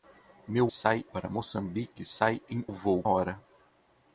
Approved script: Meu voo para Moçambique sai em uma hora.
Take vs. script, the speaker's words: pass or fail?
fail